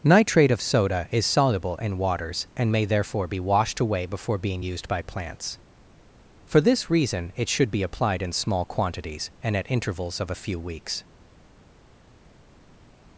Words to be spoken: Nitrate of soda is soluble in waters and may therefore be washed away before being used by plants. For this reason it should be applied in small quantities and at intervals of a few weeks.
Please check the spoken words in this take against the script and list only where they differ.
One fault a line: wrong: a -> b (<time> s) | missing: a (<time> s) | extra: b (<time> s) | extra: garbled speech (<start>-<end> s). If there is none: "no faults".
no faults